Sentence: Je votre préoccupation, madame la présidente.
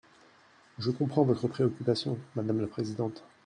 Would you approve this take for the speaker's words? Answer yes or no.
no